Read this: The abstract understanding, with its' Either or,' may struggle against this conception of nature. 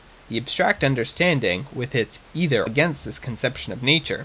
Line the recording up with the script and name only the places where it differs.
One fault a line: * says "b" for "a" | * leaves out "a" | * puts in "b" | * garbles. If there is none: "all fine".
* leaves out "or may struggle"